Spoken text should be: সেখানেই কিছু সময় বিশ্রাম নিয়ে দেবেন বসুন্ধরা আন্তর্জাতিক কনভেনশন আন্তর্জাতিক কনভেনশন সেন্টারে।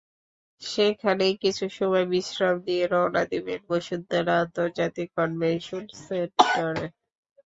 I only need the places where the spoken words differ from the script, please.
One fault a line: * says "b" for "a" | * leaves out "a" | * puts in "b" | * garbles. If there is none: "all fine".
* puts in "রওনা"
* leaves out "আন্তর্জাতিক কনভেনশন"